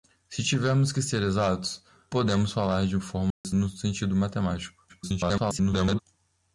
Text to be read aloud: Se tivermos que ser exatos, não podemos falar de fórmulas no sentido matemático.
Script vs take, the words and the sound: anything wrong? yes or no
yes